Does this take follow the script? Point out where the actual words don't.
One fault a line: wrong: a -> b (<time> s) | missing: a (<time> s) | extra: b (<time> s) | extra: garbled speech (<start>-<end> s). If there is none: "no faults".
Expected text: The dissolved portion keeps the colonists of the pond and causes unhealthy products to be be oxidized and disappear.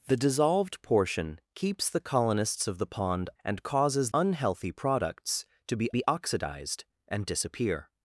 no faults